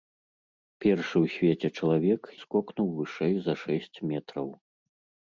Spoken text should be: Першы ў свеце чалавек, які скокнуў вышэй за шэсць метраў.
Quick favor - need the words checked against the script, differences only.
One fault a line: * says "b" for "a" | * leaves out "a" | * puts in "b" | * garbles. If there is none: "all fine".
* leaves out "які"